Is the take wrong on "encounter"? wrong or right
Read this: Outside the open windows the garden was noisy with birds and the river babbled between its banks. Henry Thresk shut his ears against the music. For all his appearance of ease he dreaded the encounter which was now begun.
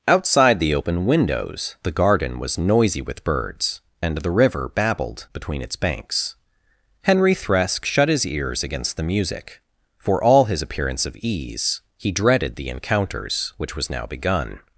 wrong